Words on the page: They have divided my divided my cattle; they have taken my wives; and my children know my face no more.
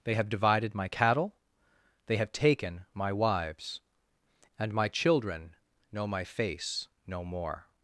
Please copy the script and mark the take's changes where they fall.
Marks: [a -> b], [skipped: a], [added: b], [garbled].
They have divided my [skipped: divided my] cattle; they have taken my wives; and my children know my face no more.